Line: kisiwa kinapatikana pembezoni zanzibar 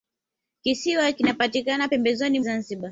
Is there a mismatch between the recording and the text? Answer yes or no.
no